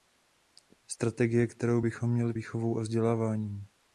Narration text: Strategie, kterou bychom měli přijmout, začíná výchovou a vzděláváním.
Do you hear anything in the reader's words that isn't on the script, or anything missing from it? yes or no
yes